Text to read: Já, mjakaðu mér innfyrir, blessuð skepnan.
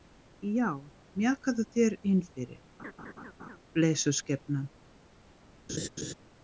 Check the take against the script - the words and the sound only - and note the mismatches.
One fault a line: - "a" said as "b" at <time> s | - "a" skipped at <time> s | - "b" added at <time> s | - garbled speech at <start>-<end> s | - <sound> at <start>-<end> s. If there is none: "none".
- "mér" said as "þér" at 1.8 s
- laugh at 2.8-3.6 s
- laugh at 5.7-6.1 s